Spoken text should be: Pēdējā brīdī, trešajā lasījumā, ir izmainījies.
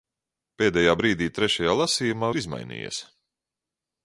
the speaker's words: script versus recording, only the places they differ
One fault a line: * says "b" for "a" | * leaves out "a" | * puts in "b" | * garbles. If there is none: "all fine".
all fine